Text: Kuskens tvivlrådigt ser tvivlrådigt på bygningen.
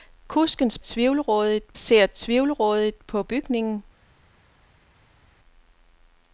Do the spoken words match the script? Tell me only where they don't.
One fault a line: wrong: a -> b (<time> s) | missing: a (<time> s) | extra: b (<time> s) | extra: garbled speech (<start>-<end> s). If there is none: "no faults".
no faults